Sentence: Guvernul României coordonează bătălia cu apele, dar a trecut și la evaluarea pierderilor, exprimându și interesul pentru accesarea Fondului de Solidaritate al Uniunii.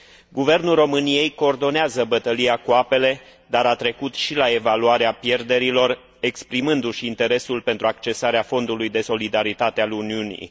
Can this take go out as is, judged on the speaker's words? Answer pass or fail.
pass